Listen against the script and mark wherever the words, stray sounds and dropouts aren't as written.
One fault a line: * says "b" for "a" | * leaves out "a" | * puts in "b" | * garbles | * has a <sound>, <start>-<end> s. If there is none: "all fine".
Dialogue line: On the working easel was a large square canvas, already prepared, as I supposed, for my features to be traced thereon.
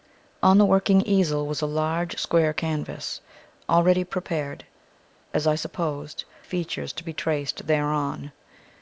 * leaves out "for my"